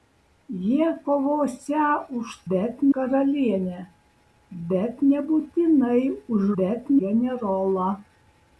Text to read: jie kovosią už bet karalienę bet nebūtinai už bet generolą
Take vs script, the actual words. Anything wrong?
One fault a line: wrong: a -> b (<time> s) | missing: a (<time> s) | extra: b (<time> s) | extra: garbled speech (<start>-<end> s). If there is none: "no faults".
no faults